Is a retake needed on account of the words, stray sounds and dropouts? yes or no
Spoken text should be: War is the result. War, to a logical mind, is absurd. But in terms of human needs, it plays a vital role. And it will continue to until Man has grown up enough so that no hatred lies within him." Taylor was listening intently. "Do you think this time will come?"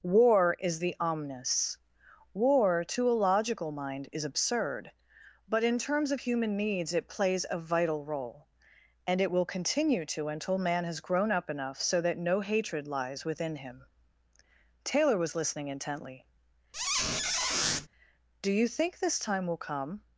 yes